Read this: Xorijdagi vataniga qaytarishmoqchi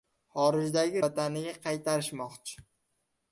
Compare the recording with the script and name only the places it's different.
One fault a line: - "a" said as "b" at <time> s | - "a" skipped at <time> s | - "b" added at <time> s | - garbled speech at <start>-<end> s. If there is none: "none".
none